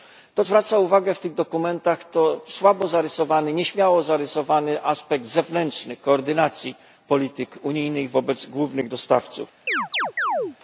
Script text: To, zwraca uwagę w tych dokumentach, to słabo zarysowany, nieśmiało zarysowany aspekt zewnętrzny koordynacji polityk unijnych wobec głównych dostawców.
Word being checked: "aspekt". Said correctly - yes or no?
yes